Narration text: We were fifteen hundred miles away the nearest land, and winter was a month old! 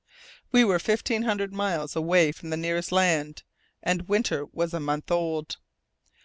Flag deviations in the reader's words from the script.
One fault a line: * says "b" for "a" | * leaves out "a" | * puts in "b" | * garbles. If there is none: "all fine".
* puts in "from"